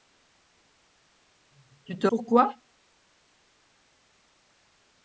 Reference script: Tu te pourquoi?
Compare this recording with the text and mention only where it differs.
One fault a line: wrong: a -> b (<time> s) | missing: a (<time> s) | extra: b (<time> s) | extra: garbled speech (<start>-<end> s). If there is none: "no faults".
no faults